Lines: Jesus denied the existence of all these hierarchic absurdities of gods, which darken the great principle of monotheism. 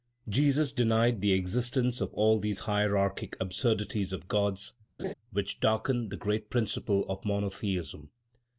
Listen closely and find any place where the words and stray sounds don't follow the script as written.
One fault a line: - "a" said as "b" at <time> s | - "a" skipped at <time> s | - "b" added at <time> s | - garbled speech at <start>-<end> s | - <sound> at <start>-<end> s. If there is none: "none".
- laugh at 5.0-5.1 s